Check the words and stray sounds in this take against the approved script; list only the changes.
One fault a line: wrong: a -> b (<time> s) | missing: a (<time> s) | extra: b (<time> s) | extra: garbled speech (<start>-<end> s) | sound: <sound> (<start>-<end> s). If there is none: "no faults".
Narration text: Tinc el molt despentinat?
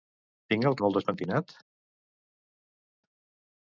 no faults